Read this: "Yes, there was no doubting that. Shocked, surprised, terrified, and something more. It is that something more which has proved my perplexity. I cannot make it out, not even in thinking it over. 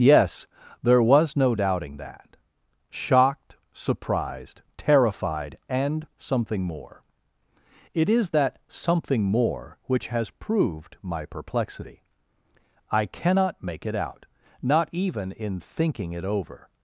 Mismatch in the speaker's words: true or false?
false